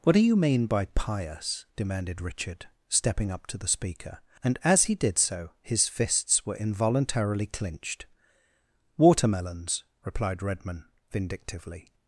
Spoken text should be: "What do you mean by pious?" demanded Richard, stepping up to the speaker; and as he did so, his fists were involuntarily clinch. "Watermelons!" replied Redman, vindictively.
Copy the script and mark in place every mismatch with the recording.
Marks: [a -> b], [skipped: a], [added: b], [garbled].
"What do you mean by pious?" demanded Richard, stepping up to the speaker; and as he did so, his fists were involuntarily [clinch. -> clinched] "Watermelons!" replied Redman, vindictively.